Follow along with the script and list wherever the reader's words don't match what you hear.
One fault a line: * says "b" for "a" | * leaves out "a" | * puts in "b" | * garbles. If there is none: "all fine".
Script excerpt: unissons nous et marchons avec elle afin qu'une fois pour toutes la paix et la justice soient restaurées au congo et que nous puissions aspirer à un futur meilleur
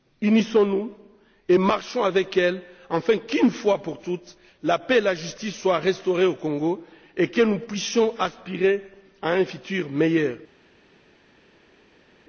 all fine